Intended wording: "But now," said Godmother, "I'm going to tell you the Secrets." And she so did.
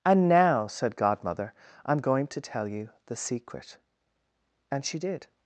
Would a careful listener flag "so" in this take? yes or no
yes